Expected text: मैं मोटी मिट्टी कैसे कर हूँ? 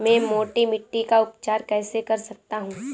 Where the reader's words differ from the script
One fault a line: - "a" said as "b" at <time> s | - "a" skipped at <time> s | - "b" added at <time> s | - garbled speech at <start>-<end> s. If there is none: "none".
- "का उपचार" added at 1.0 s
- "सकता" added at 2.2 s